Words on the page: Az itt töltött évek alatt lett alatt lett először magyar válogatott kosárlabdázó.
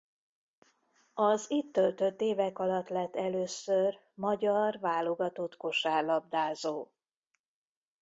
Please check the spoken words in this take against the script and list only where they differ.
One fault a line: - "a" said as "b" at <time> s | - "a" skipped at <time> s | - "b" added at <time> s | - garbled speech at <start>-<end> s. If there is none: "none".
- "alatt lett" skipped at 3.1 s